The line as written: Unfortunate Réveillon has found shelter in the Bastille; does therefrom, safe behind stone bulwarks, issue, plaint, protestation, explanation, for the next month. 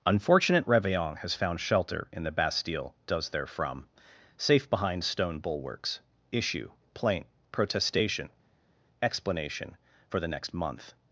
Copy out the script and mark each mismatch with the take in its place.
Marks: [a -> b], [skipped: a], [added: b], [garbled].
Unfortunate Réveillon has found shelter in the Bastille; does therefrom, safe behind stone bulwarks, issue, plaint, protestation, explanation, for the next month.